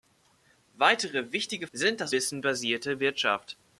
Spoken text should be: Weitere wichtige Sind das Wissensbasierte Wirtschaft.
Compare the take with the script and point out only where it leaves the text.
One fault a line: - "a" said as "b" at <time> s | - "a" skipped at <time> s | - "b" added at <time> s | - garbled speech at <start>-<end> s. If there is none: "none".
none